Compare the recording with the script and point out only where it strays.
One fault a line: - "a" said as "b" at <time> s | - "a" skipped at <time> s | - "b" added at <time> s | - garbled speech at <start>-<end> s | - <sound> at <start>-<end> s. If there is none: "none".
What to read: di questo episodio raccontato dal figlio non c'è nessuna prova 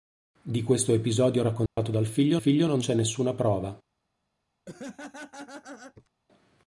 - dropout at 1.7-1.8 s
- "figlio" added at 2.4 s
- laugh at 4.7-6.1 s